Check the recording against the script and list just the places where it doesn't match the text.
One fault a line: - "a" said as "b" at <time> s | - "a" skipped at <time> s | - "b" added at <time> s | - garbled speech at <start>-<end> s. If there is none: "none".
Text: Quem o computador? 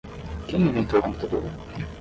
- "inventou" added at 0.6 s